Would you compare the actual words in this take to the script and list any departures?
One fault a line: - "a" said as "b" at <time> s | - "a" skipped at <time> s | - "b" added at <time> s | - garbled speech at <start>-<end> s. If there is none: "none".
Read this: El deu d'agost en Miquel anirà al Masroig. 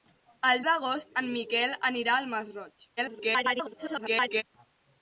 - "deu" skipped at 0.6 s
- garbled speech at 3.0-4.4 s